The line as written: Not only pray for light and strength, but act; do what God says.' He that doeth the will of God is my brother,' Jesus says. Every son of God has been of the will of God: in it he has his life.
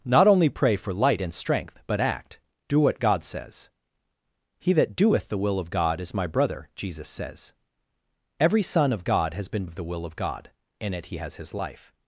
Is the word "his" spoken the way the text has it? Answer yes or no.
yes